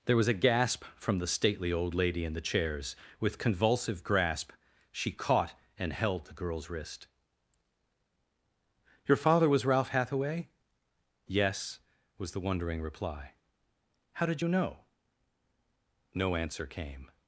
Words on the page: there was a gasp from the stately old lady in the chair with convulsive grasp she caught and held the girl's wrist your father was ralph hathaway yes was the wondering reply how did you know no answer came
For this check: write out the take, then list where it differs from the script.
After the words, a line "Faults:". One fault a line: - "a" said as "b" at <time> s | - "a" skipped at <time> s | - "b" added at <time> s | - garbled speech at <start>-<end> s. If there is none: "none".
there was a gasp from the stately old lady in the chairs with convulsive grasp she caught and held the girl's wrist your father was ralph hathaway yes was the wondering reply how did you know no answer came
Faults:
- "chair" said as "chairs" at 2.4 s